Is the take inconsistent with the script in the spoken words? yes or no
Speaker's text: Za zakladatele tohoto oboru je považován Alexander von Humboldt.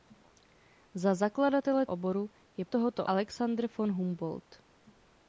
yes